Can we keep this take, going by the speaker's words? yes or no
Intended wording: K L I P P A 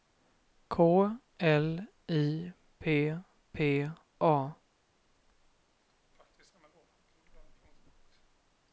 yes